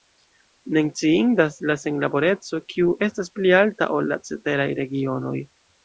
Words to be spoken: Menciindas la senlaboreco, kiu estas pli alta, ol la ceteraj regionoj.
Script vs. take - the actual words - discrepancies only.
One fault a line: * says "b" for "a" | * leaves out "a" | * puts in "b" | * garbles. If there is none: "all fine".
all fine